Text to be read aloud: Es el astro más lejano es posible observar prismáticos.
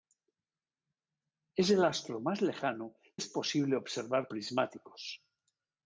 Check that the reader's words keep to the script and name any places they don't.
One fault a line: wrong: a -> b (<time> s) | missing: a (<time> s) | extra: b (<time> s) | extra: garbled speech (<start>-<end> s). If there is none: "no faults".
no faults